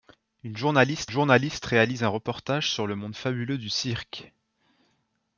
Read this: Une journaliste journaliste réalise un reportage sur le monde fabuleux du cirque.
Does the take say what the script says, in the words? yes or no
yes